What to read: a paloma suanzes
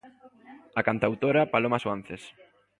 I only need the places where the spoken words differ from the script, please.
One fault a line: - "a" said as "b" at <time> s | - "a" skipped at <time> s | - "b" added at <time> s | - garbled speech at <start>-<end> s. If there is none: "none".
- "cantautora" added at 0.8 s